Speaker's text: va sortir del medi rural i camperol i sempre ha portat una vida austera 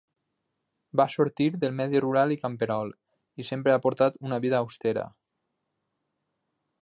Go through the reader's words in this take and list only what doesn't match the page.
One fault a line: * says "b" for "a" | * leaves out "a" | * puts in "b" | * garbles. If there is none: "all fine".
all fine